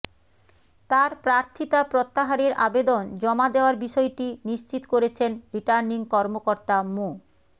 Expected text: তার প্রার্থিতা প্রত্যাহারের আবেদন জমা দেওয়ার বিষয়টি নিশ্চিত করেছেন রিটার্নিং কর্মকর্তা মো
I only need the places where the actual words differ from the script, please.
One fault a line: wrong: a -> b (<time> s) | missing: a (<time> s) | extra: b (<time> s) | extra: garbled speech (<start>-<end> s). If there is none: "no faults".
no faults